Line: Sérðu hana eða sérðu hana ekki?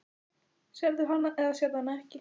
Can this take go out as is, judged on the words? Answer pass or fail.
pass